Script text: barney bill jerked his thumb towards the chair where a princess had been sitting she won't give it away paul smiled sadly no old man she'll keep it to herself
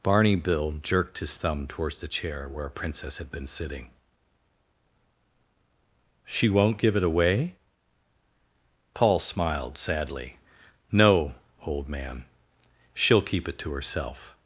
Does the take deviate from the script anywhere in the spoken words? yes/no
no